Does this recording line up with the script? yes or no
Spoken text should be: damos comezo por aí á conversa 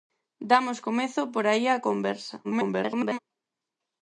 no